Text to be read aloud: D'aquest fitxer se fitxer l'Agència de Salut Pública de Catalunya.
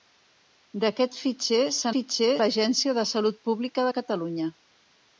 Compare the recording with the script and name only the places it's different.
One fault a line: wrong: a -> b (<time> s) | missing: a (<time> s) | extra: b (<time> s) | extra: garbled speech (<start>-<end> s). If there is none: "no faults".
no faults